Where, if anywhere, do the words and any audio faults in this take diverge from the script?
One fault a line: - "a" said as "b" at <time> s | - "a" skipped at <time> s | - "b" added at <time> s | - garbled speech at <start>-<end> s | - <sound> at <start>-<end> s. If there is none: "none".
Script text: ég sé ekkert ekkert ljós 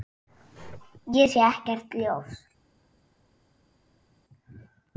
- "ekkert" skipped at 1.9 s